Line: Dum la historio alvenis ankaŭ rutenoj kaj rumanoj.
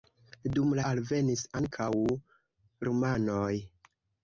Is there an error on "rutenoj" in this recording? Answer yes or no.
yes